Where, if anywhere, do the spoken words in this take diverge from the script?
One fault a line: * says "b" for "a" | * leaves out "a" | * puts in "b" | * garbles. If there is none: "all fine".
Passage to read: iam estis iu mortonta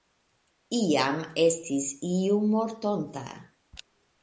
all fine